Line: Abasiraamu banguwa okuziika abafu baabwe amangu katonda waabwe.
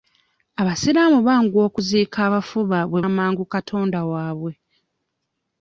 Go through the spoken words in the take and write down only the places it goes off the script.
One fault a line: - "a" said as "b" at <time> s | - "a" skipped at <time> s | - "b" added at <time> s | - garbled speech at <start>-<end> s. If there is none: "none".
none